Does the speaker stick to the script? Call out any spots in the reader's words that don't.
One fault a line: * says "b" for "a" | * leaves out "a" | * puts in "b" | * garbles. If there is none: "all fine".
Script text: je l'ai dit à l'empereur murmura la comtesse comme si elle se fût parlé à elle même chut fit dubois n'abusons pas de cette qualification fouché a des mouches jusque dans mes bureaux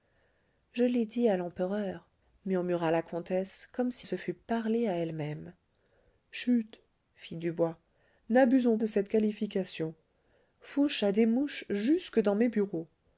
* leaves out "elle"
* leaves out "pas"